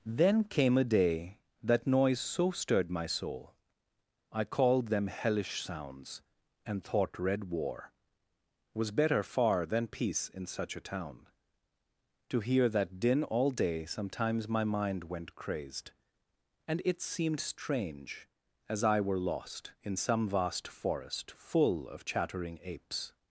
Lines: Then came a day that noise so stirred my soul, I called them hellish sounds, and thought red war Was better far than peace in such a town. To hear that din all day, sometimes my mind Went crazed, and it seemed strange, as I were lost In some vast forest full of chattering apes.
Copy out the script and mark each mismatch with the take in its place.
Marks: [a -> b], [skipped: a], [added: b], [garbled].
Then came a day that noise so stirred my soul, I called them hellish sounds, and thought red war Was better far than peace in such a town. To hear that din all day, sometimes my mind Went crazed, and it seemed strange, as I were lost In some vast forest full of chattering apes.